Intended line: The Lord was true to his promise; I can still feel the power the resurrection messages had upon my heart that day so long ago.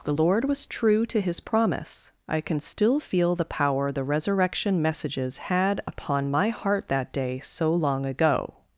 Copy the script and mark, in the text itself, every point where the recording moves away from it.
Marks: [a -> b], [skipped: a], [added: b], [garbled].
The Lord was true to his promise; I can still feel the power the resurrection messages had upon my heart that day so long ago.